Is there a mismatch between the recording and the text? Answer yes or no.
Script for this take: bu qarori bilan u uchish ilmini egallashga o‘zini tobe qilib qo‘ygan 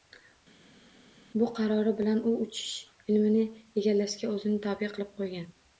no